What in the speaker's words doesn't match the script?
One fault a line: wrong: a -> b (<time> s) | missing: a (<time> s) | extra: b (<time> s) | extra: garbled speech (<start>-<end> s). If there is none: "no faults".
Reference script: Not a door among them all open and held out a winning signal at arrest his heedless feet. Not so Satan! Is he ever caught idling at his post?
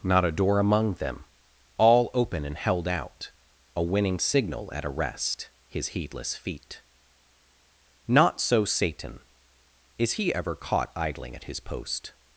no faults